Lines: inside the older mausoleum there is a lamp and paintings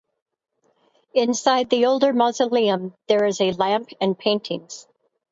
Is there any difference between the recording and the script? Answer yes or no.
no